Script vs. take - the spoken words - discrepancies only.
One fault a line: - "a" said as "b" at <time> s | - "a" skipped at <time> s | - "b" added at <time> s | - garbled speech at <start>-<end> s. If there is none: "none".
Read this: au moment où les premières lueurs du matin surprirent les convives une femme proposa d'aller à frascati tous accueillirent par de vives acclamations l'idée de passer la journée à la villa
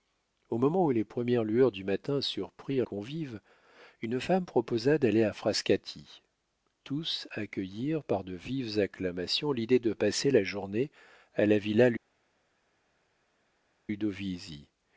- "les" skipped at 2.9 s